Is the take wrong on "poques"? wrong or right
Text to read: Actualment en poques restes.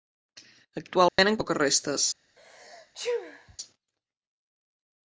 right